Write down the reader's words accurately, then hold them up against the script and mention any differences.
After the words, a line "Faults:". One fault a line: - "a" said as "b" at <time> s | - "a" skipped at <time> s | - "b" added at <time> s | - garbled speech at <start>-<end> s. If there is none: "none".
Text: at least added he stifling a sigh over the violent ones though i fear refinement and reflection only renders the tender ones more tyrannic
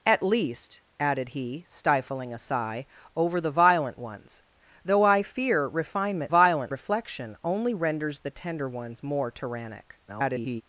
at least added he stifling a sigh over the violent ones though i fear refinement violent reflection only renders the tender ones more tyrannic [garbled]
Faults:
- "and" said as "violent" at 6.3 s
- garbled speech at 10.1-10.6 s